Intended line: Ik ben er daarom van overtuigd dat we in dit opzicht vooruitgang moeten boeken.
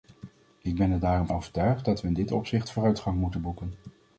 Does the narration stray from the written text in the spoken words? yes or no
yes